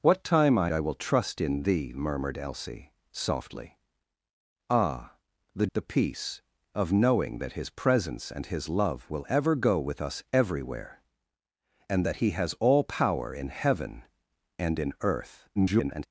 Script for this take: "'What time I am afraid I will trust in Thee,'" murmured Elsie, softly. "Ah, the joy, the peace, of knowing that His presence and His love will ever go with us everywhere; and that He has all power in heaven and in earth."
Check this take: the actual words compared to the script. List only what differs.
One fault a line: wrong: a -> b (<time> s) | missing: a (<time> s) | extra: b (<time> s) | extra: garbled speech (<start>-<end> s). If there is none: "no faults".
missing: am afraid (0.7 s)
missing: joy (5.7 s)
extra: garbled speech (15.6-16.1 s)